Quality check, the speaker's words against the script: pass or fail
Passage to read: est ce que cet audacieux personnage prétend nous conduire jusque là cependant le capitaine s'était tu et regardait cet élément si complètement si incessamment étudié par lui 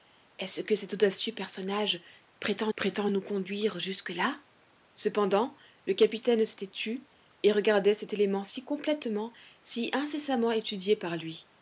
fail